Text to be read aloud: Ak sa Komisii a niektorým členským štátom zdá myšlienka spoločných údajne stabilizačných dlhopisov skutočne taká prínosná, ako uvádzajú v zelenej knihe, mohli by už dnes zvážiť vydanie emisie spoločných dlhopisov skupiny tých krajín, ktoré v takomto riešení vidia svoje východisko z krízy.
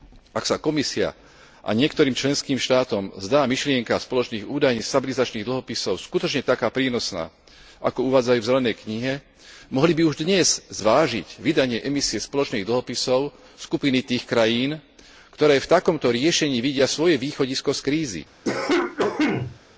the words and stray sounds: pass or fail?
fail